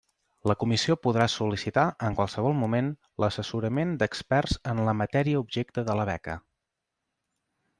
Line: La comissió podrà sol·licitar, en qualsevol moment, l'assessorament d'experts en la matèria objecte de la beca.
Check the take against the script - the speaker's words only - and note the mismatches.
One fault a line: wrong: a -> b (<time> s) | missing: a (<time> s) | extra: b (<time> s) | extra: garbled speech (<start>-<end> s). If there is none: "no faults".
no faults